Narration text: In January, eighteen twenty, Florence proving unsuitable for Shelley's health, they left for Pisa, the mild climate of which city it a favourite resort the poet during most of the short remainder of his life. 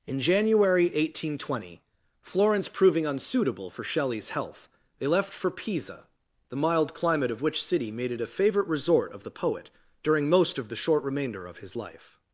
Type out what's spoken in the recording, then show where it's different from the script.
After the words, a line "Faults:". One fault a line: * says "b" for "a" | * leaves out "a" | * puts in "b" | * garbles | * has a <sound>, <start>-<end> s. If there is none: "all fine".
In January, eighteen twenty, Florence proving unsuitable for Shelley's health, they left for Pisa, the mild climate of which city made it a favourite resort of the poet during most of the short remainder of his life.
Faults:
* puts in "made"
* puts in "of"